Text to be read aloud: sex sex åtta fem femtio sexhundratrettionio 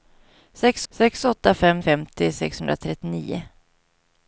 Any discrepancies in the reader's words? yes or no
no